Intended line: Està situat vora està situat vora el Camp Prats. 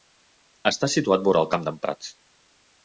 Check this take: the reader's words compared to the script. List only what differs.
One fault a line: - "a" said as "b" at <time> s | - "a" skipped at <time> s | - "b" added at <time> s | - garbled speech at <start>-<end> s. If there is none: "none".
- "està situat vora" skipped at 1.4 s
- "d'en" added at 1.7 s